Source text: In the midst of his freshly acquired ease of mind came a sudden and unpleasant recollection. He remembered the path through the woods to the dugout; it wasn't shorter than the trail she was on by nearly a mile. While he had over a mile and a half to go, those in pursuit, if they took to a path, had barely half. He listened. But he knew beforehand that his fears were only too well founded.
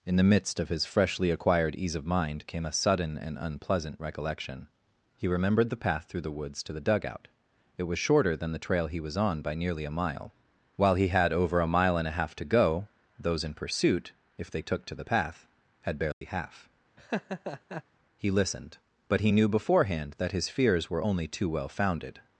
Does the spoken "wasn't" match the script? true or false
false